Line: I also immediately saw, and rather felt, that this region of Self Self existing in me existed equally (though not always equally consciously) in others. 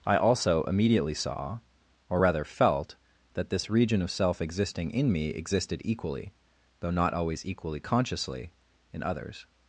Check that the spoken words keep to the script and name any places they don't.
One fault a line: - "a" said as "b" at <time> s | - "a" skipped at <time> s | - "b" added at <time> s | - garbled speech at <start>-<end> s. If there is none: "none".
- "and" said as "or" at 2.1 s
- "Self" skipped at 4.4 s